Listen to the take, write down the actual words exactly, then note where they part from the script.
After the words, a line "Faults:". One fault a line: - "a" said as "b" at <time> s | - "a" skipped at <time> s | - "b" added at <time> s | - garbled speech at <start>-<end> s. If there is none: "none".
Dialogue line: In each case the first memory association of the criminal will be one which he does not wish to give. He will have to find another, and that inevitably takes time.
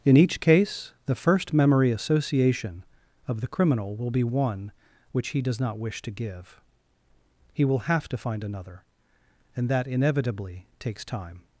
In each case the first memory association of the criminal will be one which he does not wish to give. He will have to find another, and that inevitably takes time.
Faults:
none